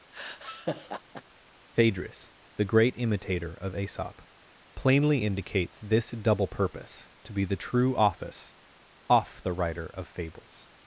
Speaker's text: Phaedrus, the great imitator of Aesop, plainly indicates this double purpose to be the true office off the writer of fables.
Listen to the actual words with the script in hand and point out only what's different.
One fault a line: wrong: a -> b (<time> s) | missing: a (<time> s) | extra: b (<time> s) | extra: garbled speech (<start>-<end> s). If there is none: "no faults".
no faults